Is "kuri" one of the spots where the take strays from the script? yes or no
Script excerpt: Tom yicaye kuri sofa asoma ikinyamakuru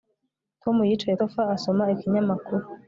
yes